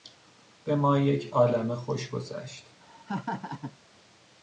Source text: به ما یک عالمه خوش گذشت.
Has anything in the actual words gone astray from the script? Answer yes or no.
no